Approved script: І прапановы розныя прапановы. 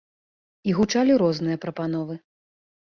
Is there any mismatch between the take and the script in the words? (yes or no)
yes